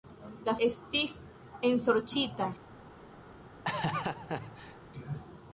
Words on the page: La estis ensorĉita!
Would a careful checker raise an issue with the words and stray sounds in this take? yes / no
yes